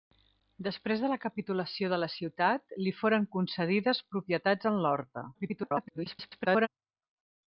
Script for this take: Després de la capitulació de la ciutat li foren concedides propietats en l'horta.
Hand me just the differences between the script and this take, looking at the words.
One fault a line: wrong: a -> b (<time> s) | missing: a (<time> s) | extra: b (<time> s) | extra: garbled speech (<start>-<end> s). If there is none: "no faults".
extra: garbled speech (5.3-6.7 s)